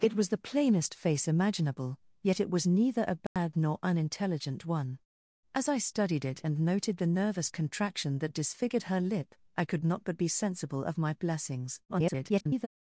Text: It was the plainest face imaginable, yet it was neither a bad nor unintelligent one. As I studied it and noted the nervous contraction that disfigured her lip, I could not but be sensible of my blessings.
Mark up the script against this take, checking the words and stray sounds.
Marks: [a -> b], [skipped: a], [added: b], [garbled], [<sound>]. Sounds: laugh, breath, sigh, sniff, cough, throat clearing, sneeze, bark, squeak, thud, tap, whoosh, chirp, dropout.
It was the plainest face imaginable, yet it was neither a bad [dropout] nor unintelligent one. As I studied it and noted the nervous contraction that disfigured her lip, I could not but be sensible of my blessings. [garbled]